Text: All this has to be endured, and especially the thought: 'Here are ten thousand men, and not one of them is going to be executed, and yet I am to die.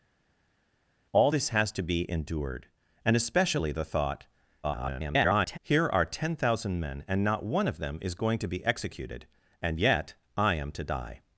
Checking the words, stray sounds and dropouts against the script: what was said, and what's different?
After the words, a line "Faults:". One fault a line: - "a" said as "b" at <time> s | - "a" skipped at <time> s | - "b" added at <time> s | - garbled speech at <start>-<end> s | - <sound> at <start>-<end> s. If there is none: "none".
All this has to be endured, and especially the thought: [garbled] 'Here are ten thousand men, and not one of them is going to be executed, and yet I am to die.
Faults:
- garbled speech at 4.6-5.6 s